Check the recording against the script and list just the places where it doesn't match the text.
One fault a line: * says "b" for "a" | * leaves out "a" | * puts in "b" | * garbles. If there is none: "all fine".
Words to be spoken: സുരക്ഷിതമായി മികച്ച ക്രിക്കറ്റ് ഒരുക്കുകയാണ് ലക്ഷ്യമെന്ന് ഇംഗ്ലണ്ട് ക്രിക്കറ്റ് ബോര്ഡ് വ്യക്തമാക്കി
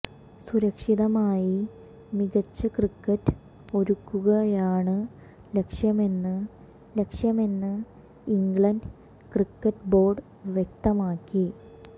* puts in "ലക്ഷ്യമെന്ന്"